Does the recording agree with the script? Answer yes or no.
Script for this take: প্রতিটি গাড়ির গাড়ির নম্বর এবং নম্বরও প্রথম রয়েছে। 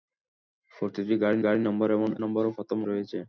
yes